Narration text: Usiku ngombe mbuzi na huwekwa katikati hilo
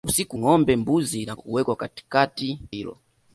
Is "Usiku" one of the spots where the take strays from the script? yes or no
no